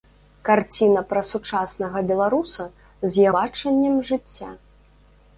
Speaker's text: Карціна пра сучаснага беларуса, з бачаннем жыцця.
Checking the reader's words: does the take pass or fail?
pass